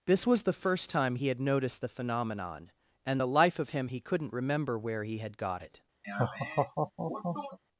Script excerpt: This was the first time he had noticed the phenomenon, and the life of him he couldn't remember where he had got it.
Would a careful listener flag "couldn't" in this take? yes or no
no